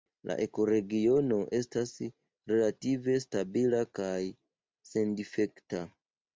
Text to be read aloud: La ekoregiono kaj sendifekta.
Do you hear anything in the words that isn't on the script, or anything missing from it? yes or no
yes